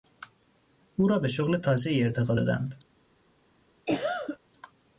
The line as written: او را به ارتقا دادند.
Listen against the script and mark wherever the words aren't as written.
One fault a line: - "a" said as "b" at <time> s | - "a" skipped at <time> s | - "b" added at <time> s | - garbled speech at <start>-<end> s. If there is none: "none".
- "شغل تازهای" added at 1.3 s